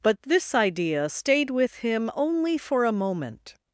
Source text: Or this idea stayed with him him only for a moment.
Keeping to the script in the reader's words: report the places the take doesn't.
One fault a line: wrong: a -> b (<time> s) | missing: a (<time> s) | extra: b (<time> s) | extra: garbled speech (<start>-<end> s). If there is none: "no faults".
wrong: Or -> But (0.0 s)
missing: him (2.1 s)